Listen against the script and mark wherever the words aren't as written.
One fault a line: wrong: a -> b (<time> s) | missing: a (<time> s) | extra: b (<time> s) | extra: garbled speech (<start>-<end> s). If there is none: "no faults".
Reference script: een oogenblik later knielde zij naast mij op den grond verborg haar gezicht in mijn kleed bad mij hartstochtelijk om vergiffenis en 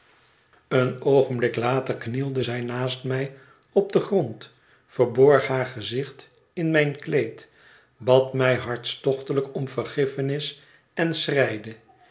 no faults